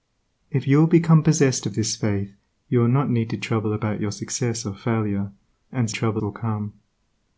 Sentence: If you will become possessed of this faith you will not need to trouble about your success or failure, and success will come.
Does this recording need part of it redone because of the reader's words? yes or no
yes